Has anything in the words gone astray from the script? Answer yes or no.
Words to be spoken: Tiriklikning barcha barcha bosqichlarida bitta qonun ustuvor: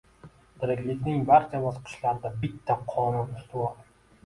yes